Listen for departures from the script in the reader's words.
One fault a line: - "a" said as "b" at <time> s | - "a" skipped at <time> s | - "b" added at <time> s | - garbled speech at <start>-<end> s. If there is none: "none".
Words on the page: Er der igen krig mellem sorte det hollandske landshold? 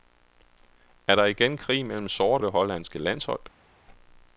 none